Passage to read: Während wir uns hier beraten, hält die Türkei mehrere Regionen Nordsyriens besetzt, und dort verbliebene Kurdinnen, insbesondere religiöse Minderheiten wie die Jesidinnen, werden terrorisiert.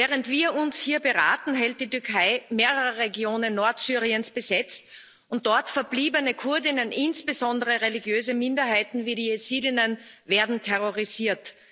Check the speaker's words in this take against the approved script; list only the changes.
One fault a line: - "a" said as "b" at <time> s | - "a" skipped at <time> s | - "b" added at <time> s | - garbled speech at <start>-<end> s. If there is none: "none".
none